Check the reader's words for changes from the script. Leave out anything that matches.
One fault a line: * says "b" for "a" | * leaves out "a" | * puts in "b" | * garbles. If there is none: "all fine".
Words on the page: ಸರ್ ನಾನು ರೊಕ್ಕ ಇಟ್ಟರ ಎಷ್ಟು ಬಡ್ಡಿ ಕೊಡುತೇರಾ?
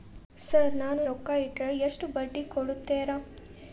all fine